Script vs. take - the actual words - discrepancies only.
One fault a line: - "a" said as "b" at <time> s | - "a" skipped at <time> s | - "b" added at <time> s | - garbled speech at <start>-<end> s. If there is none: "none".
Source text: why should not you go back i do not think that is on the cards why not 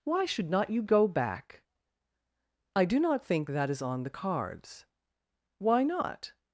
none